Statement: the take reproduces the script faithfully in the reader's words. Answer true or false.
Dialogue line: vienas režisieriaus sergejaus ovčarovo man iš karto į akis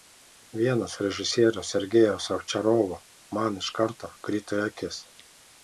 false